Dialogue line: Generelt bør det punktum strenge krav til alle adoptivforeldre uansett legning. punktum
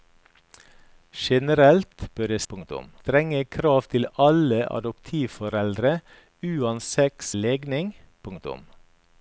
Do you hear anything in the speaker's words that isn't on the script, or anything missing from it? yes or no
no